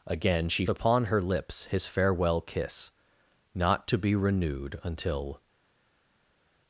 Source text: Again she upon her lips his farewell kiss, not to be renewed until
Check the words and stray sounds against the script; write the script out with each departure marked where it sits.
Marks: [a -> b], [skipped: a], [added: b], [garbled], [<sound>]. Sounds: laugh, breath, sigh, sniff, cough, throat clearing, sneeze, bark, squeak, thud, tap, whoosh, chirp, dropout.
Again she upon her lips his farewell kiss, not to be renewed until